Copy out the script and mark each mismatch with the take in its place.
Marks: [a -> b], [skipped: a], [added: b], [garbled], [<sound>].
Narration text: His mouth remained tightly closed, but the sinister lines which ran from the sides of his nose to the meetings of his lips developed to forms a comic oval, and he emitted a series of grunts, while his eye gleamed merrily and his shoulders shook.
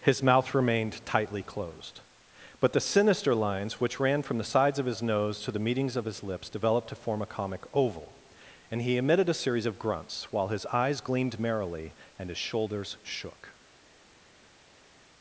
His mouth remained tightly closed, but the sinister lines which ran from the sides of his nose to the meetings of his lips developed to [forms -> form] a comic oval, and he emitted a series of grunts, while his [eye -> eyes] gleamed merrily and his shoulders shook.